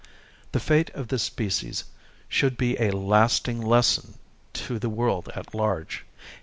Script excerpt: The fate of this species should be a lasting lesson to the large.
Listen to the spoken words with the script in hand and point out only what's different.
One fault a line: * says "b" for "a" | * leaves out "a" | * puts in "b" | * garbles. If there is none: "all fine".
* puts in "world at"